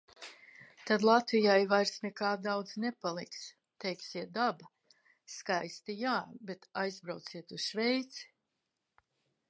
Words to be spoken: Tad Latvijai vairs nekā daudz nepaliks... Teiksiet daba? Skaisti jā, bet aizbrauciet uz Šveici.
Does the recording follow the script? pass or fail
pass